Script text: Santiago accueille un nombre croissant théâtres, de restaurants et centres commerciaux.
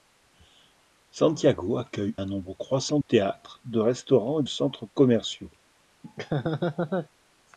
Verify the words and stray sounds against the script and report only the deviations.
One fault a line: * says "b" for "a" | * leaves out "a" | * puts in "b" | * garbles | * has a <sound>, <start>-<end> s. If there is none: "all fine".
* has a laugh, 6.0-7.1 s